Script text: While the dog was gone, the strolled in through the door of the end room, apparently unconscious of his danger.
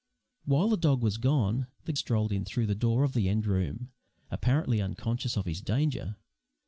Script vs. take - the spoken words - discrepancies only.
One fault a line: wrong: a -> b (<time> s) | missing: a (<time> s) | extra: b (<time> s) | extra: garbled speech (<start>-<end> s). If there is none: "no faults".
no faults